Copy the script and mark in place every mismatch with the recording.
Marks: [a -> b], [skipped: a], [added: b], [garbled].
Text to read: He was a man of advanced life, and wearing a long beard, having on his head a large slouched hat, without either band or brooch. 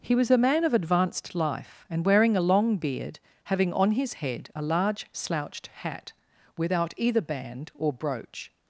He was a man of advanced life, and wearing a long beard, having on his head a large slouched hat, without either band or brooch.